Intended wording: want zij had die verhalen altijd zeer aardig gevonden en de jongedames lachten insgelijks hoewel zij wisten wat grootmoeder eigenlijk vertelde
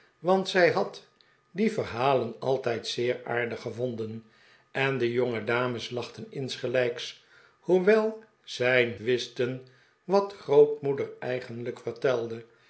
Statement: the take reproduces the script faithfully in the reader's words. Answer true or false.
true